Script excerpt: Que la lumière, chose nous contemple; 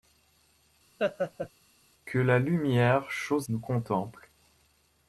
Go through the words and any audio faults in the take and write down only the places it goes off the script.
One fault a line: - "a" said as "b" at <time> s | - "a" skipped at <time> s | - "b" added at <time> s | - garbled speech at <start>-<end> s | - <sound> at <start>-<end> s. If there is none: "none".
- laugh at 1.0-1.5 s